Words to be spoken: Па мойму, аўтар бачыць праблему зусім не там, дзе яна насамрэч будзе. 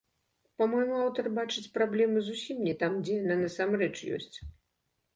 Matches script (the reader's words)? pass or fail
fail